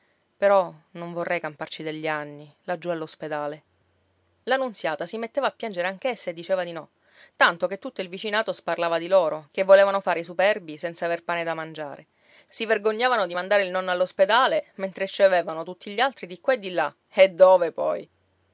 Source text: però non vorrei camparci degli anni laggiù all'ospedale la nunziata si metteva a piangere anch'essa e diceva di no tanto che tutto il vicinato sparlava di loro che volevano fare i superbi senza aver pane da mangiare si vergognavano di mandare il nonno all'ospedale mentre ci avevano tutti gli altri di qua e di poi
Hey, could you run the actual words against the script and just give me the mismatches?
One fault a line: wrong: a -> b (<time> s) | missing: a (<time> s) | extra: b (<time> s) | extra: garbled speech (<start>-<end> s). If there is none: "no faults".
extra: là e dove (16.7 s)